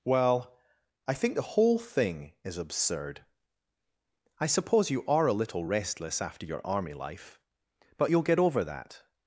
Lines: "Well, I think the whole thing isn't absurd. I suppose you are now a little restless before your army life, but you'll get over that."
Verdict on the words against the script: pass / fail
fail